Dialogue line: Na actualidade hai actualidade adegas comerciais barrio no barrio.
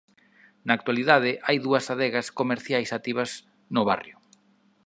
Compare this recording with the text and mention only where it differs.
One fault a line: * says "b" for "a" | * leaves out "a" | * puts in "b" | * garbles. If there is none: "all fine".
* says "dúas" for "actualidade"
* says "activas" for "barrio"